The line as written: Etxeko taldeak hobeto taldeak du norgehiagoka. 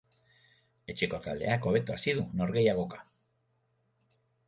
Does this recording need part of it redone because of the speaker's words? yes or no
yes